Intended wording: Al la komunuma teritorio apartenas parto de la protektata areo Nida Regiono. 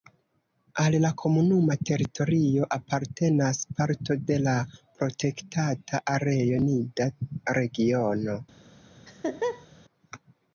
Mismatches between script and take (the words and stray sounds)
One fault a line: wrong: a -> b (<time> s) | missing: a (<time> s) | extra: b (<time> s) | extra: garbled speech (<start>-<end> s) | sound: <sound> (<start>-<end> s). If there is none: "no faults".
sound: laugh (9.1-9.7 s)